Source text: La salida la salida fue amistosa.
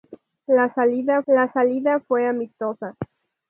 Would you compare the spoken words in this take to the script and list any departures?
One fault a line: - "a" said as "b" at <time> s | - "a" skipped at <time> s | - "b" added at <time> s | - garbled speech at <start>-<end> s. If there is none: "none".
none